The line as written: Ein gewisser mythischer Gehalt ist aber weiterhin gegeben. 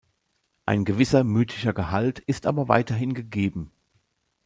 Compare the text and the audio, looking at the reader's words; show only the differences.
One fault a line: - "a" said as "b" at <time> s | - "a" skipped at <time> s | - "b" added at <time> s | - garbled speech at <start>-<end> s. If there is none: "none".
none